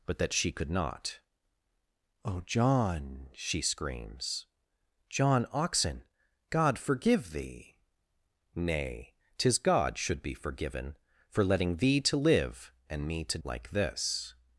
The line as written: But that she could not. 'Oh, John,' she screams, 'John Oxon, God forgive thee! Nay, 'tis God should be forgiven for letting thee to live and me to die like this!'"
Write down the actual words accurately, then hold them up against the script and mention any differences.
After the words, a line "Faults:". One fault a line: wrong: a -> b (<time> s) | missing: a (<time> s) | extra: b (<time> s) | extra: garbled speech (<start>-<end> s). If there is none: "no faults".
But that she could not. 'Oh, John,' she screams, 'John Oxon, God forgive thee! Nay, 'tis God should be forgiven for letting thee to live and me to like this!'"
Faults:
missing: die (13.4 s)